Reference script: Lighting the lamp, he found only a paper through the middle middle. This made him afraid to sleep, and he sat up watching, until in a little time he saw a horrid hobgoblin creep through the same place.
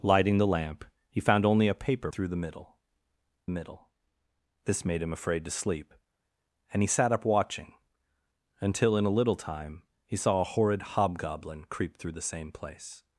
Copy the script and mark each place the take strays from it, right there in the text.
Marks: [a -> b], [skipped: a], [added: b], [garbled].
Lighting the lamp, he found only a paper through the middle middle. This made him afraid to sleep, and he sat up watching, until in a little time he saw a horrid hobgoblin creep through the same place.